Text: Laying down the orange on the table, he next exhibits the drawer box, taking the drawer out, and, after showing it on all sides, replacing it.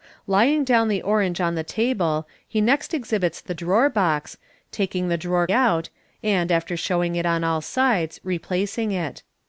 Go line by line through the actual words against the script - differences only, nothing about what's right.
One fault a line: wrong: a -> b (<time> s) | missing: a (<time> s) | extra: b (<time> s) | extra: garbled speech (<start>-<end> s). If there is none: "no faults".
no faults